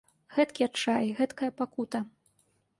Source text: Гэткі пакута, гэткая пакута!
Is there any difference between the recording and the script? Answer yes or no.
yes